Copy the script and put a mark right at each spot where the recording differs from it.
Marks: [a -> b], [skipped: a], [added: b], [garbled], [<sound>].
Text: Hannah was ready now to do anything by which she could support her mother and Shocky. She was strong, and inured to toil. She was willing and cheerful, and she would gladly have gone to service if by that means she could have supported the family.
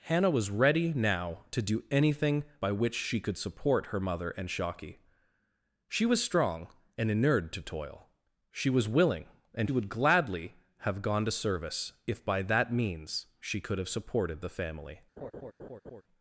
Hannah was ready now to do anything by which she could support her mother and Shocky. She was strong, and inured to toil. She was willing and [skipped: cheerful, and she] would gladly have gone to service if by that means she could have supported the family. [laugh]